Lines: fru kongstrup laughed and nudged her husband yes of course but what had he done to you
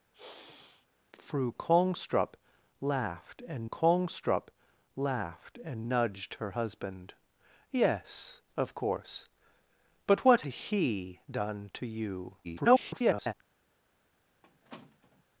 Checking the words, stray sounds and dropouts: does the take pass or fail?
fail